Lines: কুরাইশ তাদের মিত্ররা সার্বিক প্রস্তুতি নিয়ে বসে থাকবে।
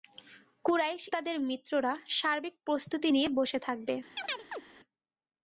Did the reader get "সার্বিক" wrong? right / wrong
right